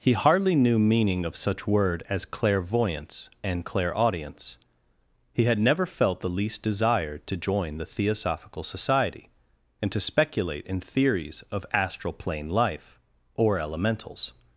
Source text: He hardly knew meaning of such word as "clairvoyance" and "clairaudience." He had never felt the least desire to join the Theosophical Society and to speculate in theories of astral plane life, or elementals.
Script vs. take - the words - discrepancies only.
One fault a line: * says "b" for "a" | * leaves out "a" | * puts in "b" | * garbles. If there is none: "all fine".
all fine